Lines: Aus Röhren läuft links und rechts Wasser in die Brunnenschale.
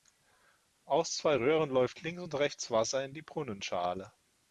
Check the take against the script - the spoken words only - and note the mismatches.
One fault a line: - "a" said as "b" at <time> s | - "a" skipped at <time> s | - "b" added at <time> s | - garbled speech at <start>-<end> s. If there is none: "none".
- "zwei" added at 1.1 s